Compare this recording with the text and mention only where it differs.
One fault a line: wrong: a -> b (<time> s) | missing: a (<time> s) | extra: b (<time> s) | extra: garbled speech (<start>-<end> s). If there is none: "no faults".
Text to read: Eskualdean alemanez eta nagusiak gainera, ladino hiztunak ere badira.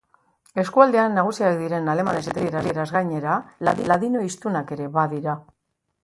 extra: nagusiak diren (1.2 s)
wrong: nagusiak -> italieraz (2.5 s)